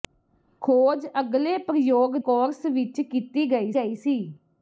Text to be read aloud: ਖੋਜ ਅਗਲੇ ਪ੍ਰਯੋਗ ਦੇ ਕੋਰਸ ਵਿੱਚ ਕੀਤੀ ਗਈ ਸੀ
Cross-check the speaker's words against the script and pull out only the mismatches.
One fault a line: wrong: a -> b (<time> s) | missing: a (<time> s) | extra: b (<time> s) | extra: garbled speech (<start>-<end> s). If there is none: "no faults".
missing: ਦੇ (2.1 s)
extra: ਗਈ (3.7 s)